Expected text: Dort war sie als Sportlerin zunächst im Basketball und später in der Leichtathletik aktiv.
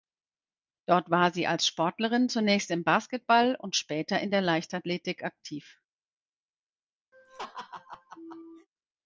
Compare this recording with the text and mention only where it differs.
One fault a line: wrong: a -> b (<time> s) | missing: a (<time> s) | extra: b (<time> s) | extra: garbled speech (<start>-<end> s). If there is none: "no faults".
no faults